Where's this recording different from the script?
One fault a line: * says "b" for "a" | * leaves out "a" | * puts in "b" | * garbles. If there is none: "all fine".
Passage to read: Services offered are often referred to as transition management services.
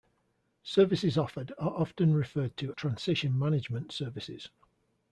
* leaves out "as"